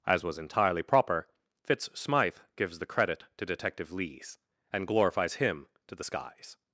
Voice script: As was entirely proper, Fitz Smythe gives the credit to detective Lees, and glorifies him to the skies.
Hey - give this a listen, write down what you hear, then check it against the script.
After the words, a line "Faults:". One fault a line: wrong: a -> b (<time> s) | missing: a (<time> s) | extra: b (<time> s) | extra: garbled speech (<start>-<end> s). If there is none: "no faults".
As was entirely proper, Fitz Smythe gives the credit to detective Lees, and glorifies him to the skies.
Faults:
no faults